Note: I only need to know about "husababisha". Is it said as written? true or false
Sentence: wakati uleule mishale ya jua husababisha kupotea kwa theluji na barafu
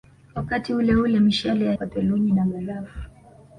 false